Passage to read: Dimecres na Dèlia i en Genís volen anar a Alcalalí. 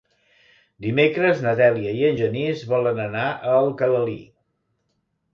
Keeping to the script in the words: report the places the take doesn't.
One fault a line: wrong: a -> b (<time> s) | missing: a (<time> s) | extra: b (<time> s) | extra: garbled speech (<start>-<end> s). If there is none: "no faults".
no faults